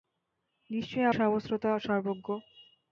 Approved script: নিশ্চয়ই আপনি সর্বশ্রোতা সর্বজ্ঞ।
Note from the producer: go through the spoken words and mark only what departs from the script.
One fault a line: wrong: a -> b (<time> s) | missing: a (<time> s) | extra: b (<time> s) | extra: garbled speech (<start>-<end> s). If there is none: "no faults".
missing: আপনি (1.1 s)